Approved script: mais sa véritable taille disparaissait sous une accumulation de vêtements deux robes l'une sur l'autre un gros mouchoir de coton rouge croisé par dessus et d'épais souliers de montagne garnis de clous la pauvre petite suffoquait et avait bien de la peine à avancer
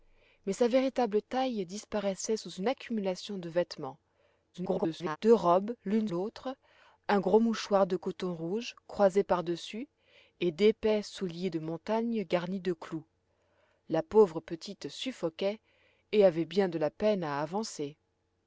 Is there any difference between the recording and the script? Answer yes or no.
yes